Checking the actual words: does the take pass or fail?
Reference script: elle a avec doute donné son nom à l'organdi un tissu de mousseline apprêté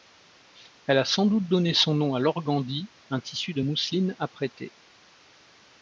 fail